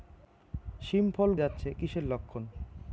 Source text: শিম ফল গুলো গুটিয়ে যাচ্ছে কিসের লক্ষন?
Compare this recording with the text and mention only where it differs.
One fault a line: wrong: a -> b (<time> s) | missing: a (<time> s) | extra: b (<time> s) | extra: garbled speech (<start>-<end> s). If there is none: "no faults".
missing: গুলো গুটিয়ে (1.3 s)